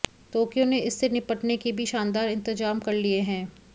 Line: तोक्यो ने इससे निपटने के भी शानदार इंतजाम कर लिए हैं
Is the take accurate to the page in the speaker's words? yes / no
yes